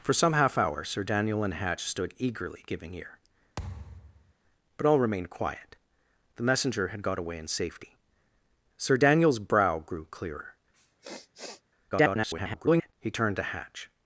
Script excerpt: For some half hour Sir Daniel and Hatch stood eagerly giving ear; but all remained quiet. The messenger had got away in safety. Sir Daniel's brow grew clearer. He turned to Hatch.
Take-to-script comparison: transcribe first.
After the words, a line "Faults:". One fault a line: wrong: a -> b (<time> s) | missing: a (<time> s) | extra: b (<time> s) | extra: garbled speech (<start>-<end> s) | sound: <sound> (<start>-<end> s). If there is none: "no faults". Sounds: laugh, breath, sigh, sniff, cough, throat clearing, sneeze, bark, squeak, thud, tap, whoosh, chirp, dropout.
For some half hour Sir Daniel and Hatch stood eagerly giving ear; but all remained quiet. The messenger had got away in safety. Sir Daniel's brow grew clearer. [garbled] He turned to Hatch.
Faults:
sound: thud (3.6-4.3 s)
sound: sniff (10.7-11.6 s)
extra: garbled speech (11.9-12.9 s)